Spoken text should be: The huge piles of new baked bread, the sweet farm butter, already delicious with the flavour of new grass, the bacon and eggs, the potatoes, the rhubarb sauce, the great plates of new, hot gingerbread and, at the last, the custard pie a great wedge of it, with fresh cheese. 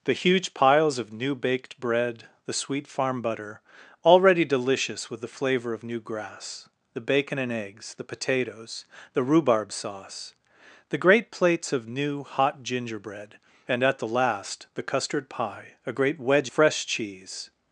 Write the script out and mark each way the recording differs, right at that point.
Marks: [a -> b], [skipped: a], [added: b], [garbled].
The huge piles of new baked bread, the sweet farm butter, already delicious with the flavour of new grass, the bacon and eggs, the potatoes, the rhubarb sauce, the great plates of new, hot gingerbread and, at the last, the custard pie a great wedge [skipped: of it, with] fresh cheese.